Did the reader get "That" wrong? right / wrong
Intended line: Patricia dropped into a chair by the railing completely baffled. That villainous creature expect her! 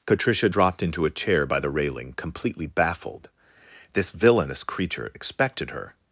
wrong